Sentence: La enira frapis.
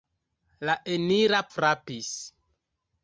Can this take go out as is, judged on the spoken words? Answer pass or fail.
pass